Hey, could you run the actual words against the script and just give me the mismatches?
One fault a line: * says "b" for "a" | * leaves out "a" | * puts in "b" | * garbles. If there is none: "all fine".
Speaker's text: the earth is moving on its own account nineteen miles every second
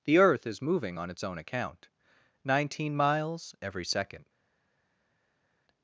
all fine